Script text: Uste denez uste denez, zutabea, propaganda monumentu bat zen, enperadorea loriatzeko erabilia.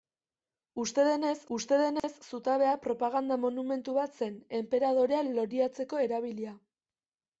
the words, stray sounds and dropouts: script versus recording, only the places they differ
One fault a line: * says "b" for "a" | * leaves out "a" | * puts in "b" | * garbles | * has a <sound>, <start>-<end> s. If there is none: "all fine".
* has a dropout, 2.0-2.0 s